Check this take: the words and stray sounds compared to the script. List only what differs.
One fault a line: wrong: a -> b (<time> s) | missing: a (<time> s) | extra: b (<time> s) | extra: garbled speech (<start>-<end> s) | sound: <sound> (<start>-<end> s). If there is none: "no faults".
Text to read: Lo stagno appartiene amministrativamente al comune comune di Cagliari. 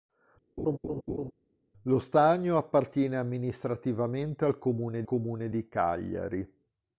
sound: laugh (0.6-1.3 s)